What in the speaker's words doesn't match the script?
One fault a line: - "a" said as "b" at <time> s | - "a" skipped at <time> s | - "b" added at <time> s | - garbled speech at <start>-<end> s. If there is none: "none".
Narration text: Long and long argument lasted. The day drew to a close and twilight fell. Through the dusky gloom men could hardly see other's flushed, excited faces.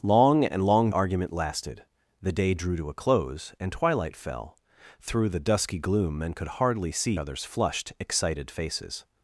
none